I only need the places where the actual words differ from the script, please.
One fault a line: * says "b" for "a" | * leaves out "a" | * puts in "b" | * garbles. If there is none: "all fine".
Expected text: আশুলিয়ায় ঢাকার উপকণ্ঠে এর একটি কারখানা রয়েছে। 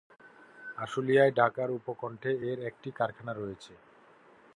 all fine